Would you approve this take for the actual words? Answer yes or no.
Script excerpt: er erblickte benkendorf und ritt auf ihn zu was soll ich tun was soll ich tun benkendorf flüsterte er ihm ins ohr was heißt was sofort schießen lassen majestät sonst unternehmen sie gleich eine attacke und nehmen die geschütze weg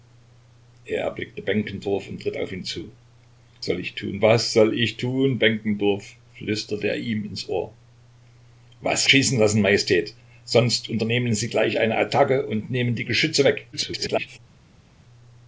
no